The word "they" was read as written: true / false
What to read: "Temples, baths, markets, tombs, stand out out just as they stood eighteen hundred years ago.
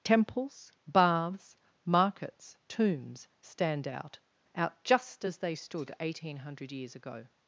true